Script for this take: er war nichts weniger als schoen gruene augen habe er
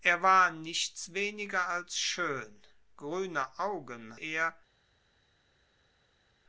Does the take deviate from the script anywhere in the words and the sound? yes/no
yes